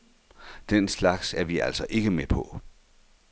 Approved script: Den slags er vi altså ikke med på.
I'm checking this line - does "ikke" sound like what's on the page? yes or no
yes